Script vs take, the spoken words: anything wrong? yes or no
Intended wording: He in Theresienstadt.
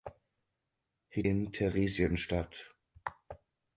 no